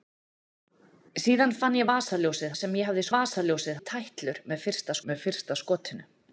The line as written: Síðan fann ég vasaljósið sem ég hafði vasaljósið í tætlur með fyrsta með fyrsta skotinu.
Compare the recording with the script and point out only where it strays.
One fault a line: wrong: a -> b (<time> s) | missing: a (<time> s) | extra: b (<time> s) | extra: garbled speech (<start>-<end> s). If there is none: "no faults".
no faults